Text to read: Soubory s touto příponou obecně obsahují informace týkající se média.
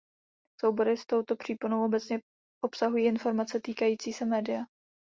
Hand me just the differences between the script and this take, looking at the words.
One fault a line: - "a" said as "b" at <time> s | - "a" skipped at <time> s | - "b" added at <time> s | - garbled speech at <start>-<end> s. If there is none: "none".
none